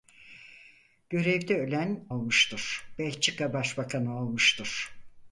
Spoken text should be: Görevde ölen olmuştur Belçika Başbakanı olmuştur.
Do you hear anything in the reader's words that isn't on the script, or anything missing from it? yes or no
no